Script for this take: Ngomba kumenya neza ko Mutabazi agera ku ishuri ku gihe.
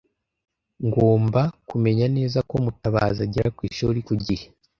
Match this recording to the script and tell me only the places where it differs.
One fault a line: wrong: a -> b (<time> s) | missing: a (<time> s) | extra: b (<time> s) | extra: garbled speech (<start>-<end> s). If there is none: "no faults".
no faults